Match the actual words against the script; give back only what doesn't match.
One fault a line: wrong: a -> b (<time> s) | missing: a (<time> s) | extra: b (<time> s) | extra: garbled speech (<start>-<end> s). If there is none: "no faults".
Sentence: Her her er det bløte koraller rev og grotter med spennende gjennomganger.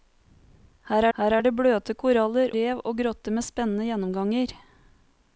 no faults